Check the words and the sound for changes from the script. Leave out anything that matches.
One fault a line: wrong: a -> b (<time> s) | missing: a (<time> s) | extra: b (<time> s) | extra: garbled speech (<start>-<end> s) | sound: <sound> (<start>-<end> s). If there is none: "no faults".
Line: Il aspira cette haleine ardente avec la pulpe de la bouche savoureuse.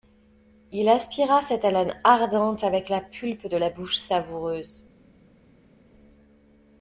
no faults